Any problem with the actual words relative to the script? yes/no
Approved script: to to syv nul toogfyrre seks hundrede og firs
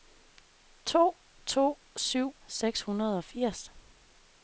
yes